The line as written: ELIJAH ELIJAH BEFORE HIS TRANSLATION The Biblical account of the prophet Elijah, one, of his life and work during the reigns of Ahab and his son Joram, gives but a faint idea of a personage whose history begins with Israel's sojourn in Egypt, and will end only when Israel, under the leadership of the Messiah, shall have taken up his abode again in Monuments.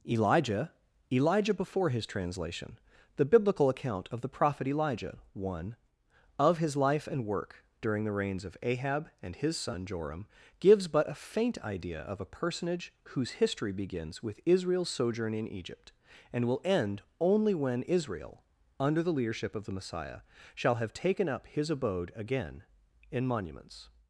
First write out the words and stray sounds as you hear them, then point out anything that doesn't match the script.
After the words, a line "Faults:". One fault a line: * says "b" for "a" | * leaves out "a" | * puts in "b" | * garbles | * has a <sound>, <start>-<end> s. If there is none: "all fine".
ELIJAH ELIJAH BEFORE HIS TRANSLATION The Biblical account of the prophet Elijah, one, of his life and work during the reigns of Ahab and his son Joram, gives but a faint idea of a personage whose history begins with Israel's sojourn in Egypt, and will end only when Israel, under the leadership of the Messiah, shall have taken up his abode again in Monuments.
Faults:
all fine